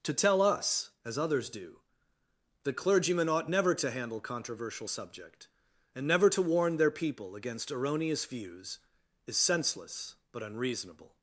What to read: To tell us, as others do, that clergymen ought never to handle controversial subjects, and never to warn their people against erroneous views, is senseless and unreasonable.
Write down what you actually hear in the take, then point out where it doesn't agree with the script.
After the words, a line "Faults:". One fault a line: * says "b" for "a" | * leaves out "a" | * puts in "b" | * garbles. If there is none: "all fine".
To tell us, as others do, that clergymen ought never to handle controversial subject, and never to warn their people against erroneous views, is senseless but unreasonable.
Faults:
* says "subject" for "subjects"
* says "but" for "and"